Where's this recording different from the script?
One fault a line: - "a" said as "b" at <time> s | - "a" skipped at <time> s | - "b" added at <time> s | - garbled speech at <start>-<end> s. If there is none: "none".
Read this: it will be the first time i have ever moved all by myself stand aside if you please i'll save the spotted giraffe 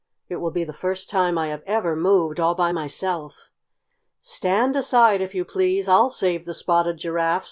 none